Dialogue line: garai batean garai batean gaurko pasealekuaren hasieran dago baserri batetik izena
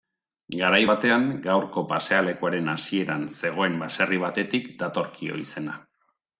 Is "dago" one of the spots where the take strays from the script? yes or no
yes